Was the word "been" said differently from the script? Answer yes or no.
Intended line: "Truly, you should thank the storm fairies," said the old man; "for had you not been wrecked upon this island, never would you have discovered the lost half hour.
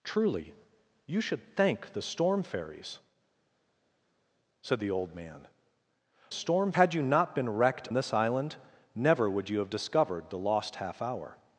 no